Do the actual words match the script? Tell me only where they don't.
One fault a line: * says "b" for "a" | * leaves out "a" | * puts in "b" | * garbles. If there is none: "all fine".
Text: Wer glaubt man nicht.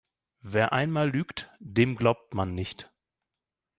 * puts in "einmal lügt dem"